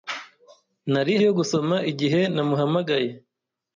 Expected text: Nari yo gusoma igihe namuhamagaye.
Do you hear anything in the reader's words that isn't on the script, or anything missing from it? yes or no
no